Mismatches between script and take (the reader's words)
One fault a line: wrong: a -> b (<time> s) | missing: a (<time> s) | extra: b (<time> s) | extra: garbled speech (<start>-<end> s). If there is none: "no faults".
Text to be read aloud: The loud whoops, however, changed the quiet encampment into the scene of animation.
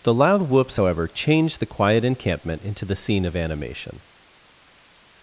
no faults